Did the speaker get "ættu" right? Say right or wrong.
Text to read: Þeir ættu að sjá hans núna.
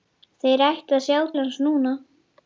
right